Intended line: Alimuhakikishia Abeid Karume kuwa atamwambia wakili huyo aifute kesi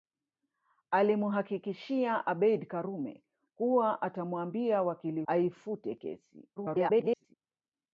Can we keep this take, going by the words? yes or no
no